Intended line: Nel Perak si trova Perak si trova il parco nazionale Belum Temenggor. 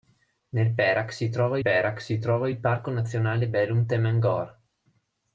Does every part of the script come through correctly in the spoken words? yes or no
yes